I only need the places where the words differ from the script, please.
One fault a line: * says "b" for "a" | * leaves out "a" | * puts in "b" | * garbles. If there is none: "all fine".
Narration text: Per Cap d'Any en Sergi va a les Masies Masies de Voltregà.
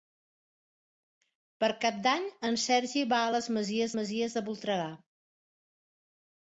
all fine